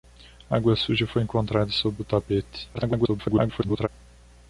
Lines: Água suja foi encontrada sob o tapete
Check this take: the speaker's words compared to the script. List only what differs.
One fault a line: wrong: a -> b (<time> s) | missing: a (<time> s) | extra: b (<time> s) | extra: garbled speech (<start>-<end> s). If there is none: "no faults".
extra: garbled speech (2.7-3.9 s)